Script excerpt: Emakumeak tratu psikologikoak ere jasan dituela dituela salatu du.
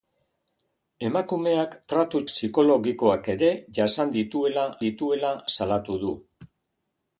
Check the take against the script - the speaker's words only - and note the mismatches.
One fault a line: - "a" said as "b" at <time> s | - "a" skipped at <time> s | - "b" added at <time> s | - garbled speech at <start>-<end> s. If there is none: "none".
none